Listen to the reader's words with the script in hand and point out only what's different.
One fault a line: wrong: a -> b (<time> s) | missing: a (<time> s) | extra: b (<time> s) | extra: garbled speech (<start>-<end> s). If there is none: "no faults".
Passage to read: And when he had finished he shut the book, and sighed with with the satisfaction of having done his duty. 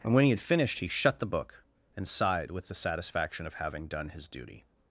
missing: with (2.7 s)